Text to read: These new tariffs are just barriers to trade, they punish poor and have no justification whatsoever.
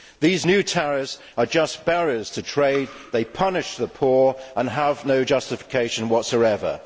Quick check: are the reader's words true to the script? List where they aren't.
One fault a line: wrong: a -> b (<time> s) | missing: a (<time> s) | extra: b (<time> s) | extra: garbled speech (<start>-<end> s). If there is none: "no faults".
extra: the (3.8 s)